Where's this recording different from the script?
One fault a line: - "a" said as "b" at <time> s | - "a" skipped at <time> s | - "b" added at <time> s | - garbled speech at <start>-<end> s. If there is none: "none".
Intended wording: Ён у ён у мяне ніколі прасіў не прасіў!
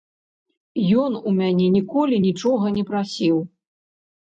- "ён у" skipped at 1.4 s
- "прасіў" said as "нічога" at 2.3 s